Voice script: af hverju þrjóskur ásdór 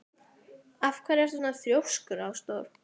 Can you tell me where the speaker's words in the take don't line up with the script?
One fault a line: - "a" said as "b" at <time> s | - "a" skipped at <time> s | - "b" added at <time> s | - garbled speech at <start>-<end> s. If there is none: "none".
- "ertu svona" added at 1.2 s